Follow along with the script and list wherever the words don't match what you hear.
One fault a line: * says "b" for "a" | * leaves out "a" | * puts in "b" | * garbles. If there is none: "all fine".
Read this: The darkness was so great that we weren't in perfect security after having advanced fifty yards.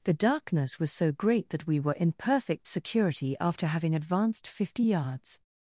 * says "were" for "weren't"